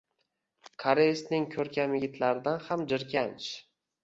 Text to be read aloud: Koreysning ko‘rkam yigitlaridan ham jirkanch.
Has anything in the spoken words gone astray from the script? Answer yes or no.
no